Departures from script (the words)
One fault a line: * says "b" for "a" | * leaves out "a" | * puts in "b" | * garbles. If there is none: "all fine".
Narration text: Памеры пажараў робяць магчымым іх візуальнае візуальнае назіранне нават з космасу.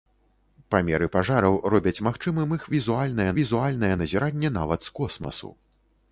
all fine